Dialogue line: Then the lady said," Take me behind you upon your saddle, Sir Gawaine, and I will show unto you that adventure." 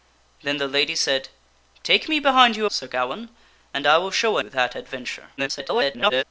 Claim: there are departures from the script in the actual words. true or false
true